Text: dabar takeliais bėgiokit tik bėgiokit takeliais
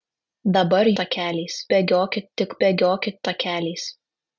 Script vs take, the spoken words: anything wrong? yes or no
no